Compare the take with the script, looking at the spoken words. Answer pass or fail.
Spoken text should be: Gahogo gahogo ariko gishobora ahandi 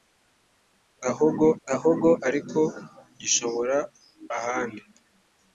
pass